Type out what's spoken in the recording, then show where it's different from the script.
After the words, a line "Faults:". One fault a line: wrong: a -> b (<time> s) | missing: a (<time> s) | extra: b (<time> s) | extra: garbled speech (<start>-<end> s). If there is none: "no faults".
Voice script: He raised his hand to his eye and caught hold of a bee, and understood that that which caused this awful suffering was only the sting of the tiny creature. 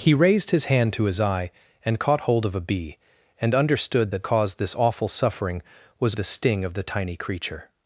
He raised his hand to his eye and caught hold of a bee, and understood that caused this awful suffering was the sting of the tiny creature.
Faults:
missing: that which (4.3 s)
missing: only (6.1 s)